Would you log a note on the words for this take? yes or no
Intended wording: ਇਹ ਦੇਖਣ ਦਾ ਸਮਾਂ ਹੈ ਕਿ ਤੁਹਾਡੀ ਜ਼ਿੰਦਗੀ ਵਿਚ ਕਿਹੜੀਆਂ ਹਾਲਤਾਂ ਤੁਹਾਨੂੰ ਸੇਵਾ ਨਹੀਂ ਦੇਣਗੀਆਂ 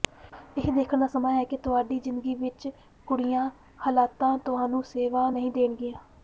no